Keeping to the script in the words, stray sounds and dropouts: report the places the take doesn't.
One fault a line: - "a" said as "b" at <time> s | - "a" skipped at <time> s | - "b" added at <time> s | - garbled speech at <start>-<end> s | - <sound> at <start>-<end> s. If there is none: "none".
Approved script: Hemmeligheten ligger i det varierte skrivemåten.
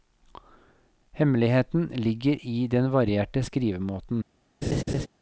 - "det" said as "den" at 2.7 s
- laugh at 4.6-5.1 s